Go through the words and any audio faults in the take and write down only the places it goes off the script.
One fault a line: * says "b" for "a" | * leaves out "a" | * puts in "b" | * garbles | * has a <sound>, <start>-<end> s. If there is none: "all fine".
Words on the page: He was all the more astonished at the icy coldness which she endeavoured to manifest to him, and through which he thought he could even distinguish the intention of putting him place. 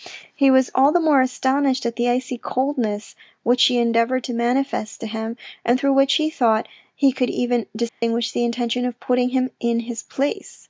* has a dropout, 7.9-8.0 s
* puts in "in his"